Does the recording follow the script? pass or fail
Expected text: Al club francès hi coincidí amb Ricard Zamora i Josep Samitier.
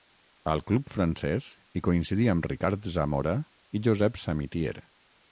pass